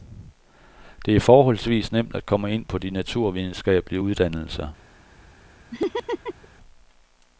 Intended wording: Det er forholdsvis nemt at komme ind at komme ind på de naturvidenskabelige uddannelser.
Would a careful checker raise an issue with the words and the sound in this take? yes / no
yes